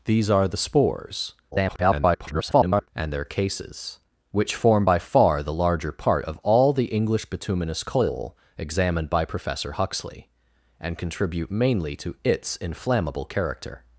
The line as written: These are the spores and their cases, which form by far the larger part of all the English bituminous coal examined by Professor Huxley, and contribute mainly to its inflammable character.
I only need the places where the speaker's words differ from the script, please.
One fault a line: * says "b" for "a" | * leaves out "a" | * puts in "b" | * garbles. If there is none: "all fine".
* garbles